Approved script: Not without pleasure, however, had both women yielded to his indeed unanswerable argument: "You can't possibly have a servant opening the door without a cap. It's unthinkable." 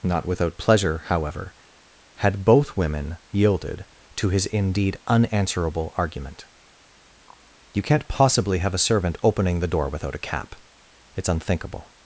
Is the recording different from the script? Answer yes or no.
no